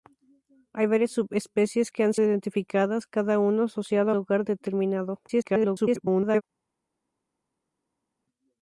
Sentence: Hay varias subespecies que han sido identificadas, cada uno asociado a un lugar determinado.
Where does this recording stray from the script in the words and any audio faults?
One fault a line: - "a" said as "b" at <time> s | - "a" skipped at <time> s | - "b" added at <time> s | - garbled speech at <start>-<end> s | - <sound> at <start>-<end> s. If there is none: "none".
- "sido" skipped at 2.1 s
- "un" skipped at 4.2 s
- garbled speech at 5.3-6.4 s